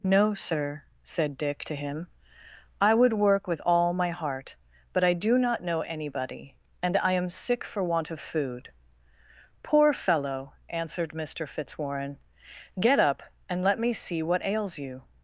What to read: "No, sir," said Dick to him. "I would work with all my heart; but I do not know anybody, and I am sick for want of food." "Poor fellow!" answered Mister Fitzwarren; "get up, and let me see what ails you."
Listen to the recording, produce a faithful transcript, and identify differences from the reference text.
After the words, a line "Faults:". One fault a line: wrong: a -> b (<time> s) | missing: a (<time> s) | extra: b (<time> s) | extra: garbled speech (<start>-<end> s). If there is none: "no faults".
"No, sir," said Dick to him. "I would work with all my heart; but I do not know anybody, and I am sick for want of food." "Poor fellow!" answered Mister Fitzwarren; "get up, and let me see what ails you."
Faults:
no faults